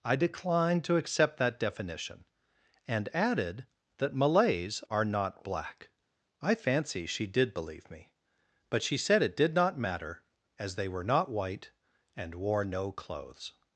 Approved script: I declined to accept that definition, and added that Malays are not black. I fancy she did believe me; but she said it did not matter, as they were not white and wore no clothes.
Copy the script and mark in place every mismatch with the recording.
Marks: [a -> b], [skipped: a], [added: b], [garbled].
I declined to accept that definition, and added that Malays are not black. I fancy she did believe me; but she said it did not matter, as they were not white and wore no clothes.